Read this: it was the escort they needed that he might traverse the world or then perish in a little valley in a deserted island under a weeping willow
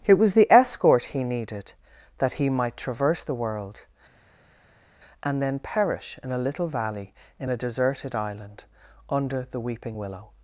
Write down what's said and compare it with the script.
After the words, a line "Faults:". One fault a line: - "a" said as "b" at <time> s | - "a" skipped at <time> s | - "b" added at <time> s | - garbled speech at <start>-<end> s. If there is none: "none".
it was the escort he needed that he might traverse the world and then perish in a little valley in a deserted island under the weeping willow
Faults:
- "they" said as "he" at 1.1 s
- "or" said as "and" at 5.2 s
- "a" said as "the" at 9.4 s